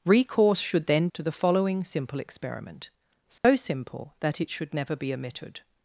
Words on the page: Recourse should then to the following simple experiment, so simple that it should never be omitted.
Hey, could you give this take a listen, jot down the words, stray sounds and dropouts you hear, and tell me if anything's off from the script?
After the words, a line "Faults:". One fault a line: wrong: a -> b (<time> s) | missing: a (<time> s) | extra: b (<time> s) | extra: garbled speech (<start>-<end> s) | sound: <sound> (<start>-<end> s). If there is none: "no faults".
Recourse should then to the following simple experiment, so simple that it should never be omitted.
Faults:
sound: dropout (3.4-3.4 s)